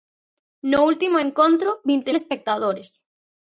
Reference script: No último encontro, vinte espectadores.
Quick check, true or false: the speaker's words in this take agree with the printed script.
true